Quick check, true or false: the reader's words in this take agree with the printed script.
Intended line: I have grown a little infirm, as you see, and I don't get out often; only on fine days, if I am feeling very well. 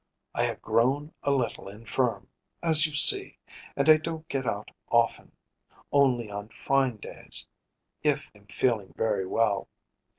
false